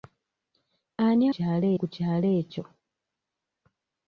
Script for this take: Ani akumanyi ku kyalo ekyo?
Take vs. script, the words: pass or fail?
fail